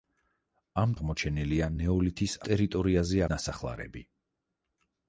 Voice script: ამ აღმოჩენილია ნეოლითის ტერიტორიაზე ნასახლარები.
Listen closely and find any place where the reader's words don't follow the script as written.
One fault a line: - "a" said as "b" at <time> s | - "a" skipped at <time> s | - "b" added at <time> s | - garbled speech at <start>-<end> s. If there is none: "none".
none